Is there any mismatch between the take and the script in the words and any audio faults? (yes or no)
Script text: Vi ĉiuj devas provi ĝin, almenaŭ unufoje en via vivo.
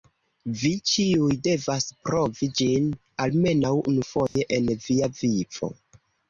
yes